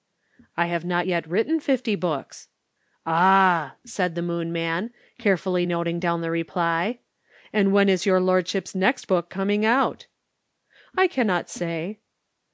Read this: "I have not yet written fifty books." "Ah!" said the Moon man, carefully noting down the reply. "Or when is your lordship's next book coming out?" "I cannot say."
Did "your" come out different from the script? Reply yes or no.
no